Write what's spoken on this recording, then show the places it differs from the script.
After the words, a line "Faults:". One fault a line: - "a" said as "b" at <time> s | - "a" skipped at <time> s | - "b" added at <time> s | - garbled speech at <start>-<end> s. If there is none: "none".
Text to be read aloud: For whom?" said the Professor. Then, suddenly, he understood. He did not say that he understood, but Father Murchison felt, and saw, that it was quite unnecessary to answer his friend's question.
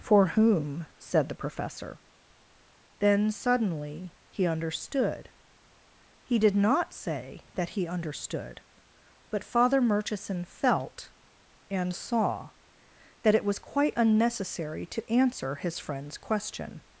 For whom?" said the Professor. Then, suddenly, he understood. He did not say that he understood, but Father Murchison felt, and saw, that it was quite unnecessary to answer his friend's question.
Faults:
none